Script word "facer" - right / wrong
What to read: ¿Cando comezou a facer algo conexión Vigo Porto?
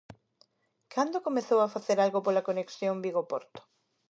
right